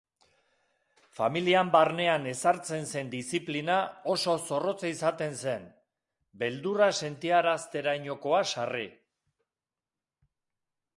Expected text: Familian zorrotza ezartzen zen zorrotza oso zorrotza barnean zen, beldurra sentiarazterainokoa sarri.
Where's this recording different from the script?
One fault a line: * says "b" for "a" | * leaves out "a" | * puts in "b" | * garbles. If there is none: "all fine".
* says "barnean" for "zorrotza"
* says "diziplina" for "zorrotza"
* says "izaten" for "barnean"